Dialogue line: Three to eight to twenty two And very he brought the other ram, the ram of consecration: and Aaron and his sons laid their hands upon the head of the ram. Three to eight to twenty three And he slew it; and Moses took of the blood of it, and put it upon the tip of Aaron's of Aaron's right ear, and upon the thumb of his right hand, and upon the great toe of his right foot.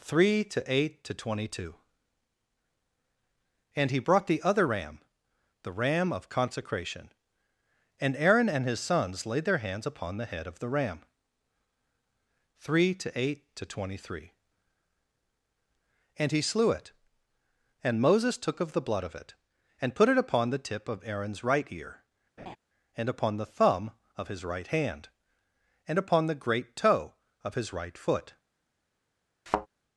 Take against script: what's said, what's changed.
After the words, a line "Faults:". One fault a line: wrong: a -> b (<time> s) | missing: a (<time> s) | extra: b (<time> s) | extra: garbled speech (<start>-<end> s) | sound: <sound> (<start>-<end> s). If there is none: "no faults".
Three to eight to twenty two And he brought the other ram, the ram of consecration: and Aaron and his sons laid their hands upon the head of the ram. Three to eight to twenty three And he slew it; and Moses took of the blood of it, and put it upon the tip of Aaron's right ear, and upon the thumb of his right hand, and upon the great toe of his right foot.
Faults:
missing: very (3.9 s)
missing: of Aaron's (21.4 s)
sound: laugh (22.4-22.6 s)
sound: thud (29.5-29.7 s)